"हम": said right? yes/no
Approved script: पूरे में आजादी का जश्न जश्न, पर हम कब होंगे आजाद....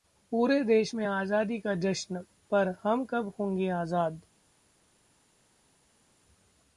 yes